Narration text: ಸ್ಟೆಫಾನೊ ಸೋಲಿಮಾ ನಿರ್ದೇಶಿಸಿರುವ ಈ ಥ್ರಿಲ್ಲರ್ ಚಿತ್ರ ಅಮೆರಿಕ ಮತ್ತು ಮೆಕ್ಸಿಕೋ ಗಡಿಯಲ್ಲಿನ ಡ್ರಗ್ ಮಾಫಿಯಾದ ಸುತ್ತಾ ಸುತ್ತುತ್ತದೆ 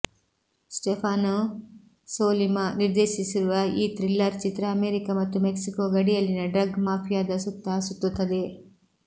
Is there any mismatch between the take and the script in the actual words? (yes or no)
no